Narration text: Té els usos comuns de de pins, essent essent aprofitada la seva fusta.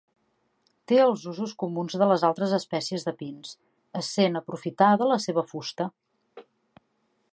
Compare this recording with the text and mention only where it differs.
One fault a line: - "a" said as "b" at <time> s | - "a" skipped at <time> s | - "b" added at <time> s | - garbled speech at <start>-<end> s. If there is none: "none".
- "les altres espècies" added at 2.1 s
- "essent" skipped at 4.4 s